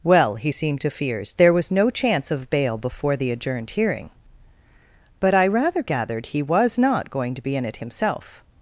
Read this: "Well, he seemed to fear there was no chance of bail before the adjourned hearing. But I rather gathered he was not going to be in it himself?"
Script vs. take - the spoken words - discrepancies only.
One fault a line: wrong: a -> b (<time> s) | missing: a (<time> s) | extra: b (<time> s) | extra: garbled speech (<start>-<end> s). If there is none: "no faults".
wrong: fear -> fears (0.9 s)